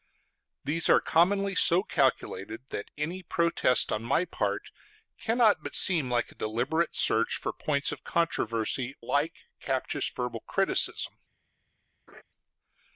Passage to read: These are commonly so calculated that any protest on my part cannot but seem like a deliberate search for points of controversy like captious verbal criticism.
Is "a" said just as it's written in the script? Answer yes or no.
yes